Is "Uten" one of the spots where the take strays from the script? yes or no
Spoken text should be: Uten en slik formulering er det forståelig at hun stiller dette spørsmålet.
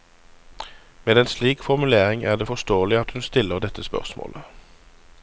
yes